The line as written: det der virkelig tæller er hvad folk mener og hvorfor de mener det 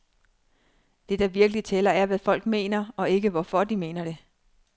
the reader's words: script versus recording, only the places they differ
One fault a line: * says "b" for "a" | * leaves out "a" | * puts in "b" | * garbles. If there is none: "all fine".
* puts in "ikke"